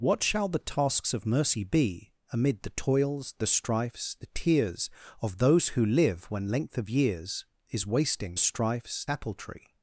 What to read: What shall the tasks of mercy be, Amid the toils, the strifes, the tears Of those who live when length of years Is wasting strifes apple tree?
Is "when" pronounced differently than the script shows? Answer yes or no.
no